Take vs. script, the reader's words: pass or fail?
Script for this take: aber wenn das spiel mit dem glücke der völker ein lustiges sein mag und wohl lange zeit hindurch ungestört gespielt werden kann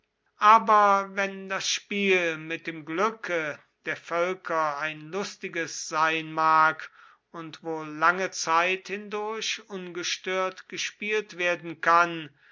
pass